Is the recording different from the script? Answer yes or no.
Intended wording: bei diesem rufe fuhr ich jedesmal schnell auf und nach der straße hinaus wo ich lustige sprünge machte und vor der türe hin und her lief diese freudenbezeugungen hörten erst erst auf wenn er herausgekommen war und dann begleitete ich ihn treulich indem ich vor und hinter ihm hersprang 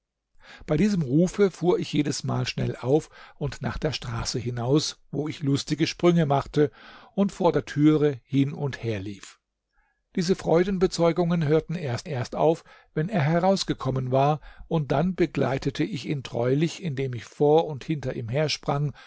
no